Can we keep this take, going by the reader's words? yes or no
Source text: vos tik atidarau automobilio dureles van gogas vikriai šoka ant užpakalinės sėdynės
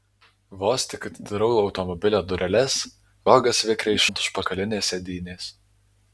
no